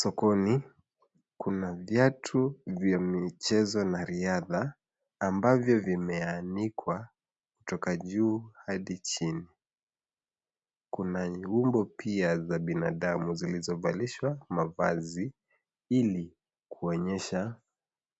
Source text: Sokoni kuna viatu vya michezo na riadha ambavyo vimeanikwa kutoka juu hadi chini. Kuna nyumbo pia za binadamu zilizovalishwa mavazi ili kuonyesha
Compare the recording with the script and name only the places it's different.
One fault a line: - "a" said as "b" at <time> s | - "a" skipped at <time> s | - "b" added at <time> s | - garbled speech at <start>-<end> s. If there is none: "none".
none